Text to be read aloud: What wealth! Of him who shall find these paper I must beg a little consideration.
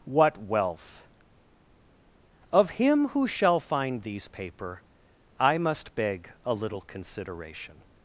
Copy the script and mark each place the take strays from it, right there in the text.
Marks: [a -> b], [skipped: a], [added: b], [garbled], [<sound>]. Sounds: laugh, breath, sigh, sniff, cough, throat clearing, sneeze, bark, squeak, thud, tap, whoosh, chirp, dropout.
What wealth! Of him who shall find these paper I must beg a little consideration.